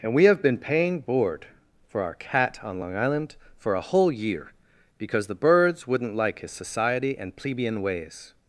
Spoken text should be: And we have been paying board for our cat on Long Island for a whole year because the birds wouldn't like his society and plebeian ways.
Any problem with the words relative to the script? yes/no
no